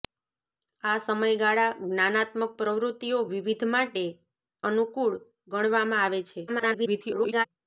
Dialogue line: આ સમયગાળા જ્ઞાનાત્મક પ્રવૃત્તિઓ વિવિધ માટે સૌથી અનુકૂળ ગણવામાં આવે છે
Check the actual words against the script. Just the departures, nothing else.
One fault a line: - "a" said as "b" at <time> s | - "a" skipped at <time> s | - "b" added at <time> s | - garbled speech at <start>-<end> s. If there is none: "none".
- "સૌથી" skipped at 4.1 s
- garbled speech at 6.5-7.5 s